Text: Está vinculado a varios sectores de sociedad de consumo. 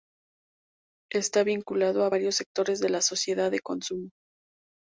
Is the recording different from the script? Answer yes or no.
yes